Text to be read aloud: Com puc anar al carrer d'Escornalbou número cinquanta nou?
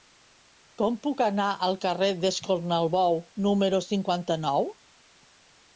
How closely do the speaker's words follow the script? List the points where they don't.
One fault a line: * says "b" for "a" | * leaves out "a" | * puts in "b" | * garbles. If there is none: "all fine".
all fine